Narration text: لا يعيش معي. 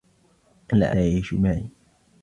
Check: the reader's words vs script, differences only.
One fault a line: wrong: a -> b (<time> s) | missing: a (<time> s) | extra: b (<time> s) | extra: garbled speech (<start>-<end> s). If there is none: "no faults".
no faults